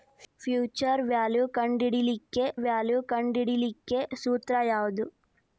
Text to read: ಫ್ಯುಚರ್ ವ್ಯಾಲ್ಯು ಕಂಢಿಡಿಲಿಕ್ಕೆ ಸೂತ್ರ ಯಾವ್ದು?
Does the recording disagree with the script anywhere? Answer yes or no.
yes